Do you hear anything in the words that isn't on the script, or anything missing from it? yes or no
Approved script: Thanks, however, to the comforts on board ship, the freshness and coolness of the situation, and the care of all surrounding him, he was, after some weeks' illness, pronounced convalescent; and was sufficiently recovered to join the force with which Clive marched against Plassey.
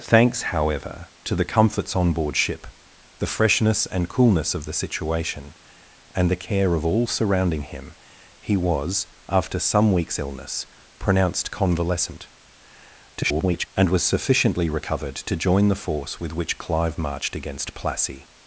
yes